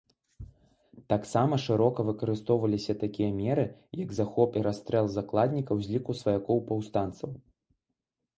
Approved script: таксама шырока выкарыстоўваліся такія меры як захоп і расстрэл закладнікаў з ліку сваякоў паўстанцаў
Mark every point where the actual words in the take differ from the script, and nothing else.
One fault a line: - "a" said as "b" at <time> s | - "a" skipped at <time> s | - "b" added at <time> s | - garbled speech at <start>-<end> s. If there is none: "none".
none